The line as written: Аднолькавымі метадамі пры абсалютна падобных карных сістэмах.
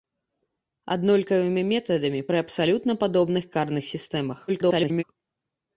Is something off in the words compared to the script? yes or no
yes